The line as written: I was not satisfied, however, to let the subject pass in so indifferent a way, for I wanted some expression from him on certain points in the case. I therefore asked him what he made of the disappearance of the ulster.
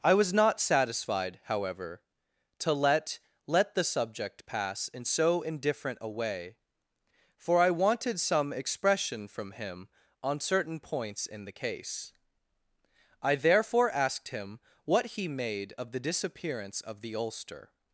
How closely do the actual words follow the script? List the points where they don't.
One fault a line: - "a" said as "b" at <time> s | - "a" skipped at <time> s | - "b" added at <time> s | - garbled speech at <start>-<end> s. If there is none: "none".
- "let" added at 3.5 s